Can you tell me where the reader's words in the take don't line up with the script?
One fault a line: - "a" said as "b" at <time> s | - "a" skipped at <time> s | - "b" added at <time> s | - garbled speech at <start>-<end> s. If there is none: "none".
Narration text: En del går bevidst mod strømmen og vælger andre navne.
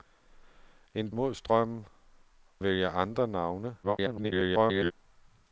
- "del går bevidst" skipped at 1.1 s
- "og" skipped at 1.9 s
- garbled speech at 3.8-4.9 s